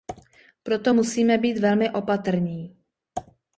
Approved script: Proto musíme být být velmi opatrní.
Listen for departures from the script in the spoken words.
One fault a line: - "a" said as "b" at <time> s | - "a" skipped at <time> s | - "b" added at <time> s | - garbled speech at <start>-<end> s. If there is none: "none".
- "být" skipped at 1.6 s